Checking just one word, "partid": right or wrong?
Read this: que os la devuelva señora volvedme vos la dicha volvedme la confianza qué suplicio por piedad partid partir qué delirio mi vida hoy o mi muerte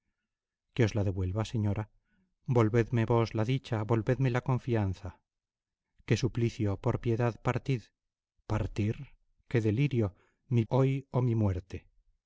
right